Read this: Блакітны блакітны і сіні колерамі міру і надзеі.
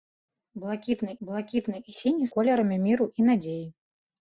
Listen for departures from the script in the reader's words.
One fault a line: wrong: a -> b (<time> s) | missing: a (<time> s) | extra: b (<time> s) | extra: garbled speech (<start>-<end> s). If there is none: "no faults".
no faults